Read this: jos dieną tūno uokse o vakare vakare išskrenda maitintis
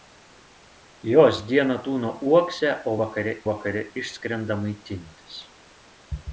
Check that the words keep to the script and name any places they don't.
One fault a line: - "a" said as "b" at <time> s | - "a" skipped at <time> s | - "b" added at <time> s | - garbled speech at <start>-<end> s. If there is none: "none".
none